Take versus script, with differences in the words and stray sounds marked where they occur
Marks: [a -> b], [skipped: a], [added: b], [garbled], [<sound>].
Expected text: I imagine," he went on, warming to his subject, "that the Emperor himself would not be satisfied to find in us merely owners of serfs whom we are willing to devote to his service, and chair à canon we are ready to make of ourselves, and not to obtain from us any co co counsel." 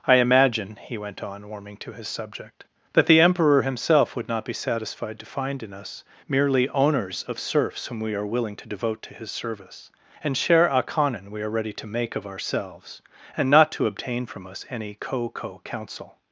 I imagine," he went on, warming to his subject, "that the Emperor himself would not be satisfied to find in us merely owners of serfs whom we are willing to devote to his service, and [chair à -> share a] canon we are ready to make of ourselves, and not to obtain from us any co co counsel."